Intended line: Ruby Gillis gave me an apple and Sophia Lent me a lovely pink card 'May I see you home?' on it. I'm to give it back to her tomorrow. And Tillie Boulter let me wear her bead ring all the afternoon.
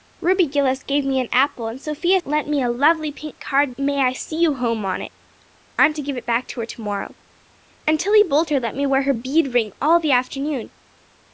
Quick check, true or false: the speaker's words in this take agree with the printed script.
true